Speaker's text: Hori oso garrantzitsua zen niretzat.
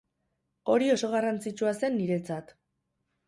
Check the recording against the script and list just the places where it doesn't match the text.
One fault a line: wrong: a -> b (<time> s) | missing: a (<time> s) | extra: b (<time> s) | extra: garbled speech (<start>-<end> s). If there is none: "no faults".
no faults